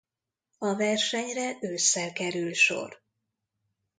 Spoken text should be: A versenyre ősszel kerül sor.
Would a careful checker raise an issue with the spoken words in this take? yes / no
no